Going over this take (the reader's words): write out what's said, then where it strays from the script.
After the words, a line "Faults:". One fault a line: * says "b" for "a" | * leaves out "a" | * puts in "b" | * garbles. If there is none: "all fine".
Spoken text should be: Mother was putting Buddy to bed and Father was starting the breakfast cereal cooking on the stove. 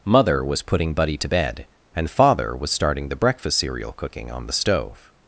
Mother was putting Buddy to bed and Father was starting the breakfast cereal cooking on the stove.
Faults:
all fine